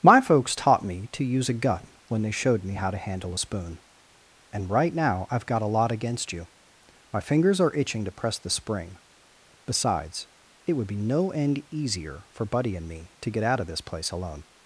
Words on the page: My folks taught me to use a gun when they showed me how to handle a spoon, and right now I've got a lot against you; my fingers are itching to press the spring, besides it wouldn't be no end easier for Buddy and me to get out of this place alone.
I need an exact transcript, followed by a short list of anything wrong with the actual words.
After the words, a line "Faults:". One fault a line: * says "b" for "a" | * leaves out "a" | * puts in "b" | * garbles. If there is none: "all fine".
My folks taught me to use a gun when they showed me how to handle a spoon, and right now I've got a lot against you; my fingers are itching to press the spring, besides it would be no end easier for Buddy and me to get out of this place alone.
Faults:
* says "would" for "wouldn't"